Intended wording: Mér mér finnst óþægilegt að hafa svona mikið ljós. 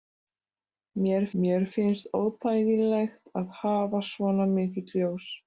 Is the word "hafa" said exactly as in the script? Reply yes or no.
yes